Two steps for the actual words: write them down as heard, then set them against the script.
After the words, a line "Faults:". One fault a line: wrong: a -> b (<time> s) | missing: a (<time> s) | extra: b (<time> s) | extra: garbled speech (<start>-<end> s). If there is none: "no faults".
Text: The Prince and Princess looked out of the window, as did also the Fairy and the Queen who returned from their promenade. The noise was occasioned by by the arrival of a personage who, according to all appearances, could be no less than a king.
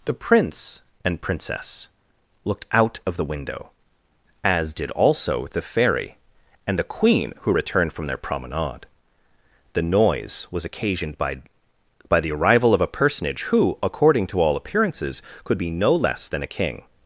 The Prince and Princess looked out of the window, as did also the Fairy and the Queen who returned from their promenade. The noise was occasioned by by the arrival of a personage who, according to all appearances, could be no less than a king.
Faults:
no faults